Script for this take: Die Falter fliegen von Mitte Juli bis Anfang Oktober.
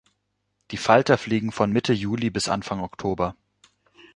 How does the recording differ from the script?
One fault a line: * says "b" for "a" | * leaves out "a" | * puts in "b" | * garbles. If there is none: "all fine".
all fine